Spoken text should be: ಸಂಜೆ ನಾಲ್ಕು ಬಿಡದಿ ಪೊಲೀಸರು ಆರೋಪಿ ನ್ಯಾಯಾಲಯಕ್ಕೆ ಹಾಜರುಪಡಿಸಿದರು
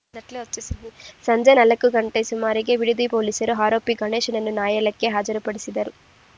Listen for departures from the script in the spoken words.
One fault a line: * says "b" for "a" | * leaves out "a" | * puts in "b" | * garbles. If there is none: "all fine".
* puts in "ಗಂಟೆ ಸುಮಾರಿಗೆ"
* puts in "ಗಣೇಶನನ್ನು"